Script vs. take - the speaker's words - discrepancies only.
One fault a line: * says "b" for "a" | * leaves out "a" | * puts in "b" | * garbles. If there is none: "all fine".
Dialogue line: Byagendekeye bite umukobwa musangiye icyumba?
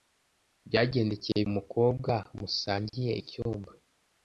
* leaves out "bite"